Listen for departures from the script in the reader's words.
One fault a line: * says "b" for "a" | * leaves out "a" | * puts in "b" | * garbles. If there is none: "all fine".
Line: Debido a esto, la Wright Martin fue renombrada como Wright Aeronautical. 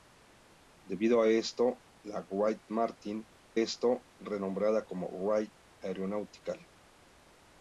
* says "esto" for "fue"